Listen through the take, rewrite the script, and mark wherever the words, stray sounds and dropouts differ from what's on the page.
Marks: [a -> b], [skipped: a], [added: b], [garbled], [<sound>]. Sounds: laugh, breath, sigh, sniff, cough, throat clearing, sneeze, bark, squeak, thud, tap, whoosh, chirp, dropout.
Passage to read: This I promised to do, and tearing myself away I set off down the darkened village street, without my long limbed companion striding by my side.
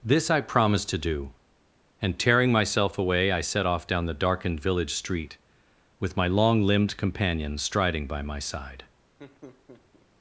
This I promised to do, and tearing myself away I set off down the darkened village street, [without -> with] my long limbed companion striding by my side. [laugh]